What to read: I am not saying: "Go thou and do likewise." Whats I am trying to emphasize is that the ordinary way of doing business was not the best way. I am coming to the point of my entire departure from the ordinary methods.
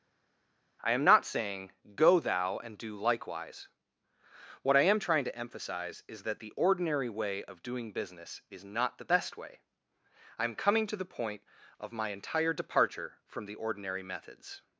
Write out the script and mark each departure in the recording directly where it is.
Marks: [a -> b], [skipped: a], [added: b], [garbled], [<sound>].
I am not saying: "Go thou and do likewise." [Whats -> What] I am trying to emphasize is that the ordinary way of doing business [was -> is] not the best way. I am coming to the point of my entire departure from the ordinary methods.